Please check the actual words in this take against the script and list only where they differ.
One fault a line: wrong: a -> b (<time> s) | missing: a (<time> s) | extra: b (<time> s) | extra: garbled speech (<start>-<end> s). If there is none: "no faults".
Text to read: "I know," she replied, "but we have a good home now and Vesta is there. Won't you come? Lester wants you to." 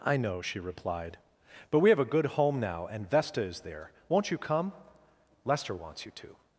no faults